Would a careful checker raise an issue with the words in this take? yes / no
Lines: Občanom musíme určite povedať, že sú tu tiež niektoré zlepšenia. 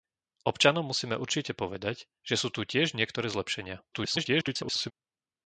yes